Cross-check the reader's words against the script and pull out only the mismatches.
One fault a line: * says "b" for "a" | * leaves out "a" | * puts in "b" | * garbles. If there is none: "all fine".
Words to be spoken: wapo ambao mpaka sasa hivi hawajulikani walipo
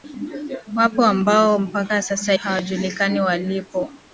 * leaves out "hivi"